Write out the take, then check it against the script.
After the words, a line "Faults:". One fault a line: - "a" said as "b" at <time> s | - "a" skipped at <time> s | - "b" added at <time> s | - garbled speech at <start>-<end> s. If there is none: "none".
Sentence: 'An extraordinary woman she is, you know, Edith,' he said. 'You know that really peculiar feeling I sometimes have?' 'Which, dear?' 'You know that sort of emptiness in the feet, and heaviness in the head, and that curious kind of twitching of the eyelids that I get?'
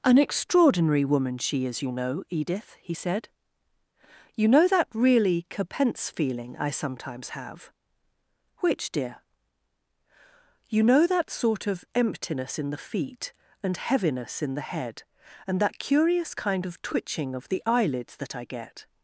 'An extraordinary woman she is, you know, Edith,' he said. 'You know that really capense feeling I sometimes have?' 'Which, dear?' 'You know that sort of emptiness in the feet, and heaviness in the head, and that curious kind of twitching of the eyelids that I get?'
Faults:
- "peculiar" said as "capense" at 5.5 s